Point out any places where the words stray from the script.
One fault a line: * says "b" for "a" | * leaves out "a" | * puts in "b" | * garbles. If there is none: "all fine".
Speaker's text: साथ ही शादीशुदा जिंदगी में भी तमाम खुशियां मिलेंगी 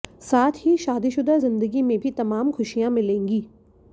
all fine